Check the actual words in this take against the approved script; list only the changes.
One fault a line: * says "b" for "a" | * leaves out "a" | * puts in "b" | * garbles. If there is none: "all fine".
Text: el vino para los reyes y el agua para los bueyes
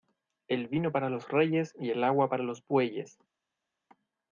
all fine